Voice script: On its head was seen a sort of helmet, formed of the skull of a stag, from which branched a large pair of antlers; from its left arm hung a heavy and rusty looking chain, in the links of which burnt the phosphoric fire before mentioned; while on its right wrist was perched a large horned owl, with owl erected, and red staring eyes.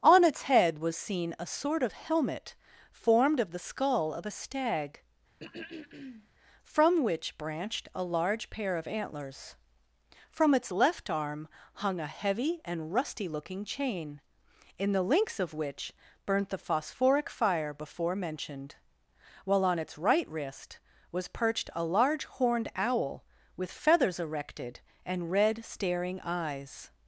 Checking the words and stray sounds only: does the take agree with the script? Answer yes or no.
no